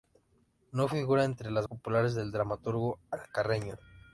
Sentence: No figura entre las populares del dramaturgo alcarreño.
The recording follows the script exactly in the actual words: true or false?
true